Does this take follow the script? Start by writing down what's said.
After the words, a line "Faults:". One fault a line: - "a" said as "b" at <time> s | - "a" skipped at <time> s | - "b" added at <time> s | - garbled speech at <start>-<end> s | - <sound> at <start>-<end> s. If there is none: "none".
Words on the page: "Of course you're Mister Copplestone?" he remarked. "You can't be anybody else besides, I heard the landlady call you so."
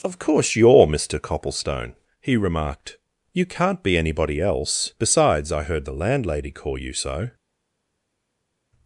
"Of course you're Mister Copplestone?" he remarked. "You can't be anybody else besides, I heard the landlady call you so."
Faults:
none